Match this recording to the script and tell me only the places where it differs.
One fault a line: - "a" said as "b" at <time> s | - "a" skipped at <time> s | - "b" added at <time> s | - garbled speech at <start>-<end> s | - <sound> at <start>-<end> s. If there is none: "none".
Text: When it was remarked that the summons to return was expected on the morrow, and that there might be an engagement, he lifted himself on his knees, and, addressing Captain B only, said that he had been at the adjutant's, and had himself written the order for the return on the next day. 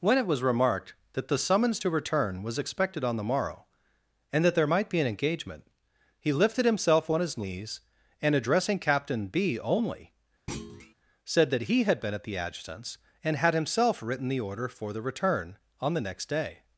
- thud at 10.5-10.9 s